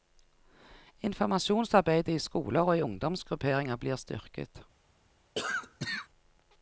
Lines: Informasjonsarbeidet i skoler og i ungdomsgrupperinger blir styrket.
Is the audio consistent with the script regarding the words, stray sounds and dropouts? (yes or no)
no